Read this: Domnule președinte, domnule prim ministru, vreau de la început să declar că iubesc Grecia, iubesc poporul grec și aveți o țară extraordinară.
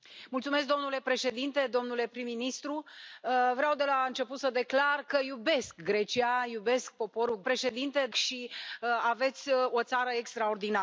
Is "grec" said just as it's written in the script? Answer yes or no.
no